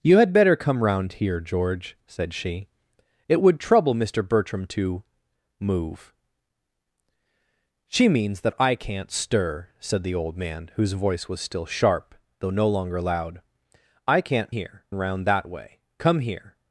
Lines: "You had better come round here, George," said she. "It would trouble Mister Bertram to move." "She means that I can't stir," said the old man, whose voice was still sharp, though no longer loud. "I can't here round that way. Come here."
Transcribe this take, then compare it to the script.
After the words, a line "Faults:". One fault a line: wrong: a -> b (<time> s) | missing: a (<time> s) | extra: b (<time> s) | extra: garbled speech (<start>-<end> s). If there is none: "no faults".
"You had better come round here, George," said she. "It would trouble Mister Bertram to move." "She means that I can't stir," said the old man, whose voice was still sharp, though no longer loud. "I can't here round that way. Come here."
Faults:
no faults